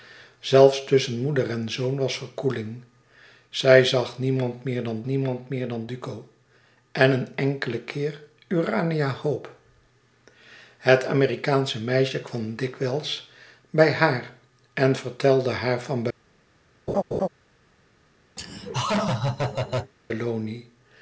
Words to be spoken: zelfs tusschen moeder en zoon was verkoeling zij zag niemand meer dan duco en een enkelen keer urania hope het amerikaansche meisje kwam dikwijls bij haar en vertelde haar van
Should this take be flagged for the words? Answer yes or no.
yes